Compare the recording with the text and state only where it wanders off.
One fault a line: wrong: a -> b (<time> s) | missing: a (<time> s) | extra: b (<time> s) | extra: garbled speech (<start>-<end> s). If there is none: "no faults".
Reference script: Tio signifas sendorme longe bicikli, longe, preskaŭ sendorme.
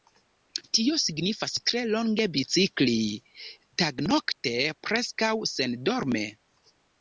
wrong: sendorme -> tre (1.7 s)
wrong: longe -> tagnokte (3.8 s)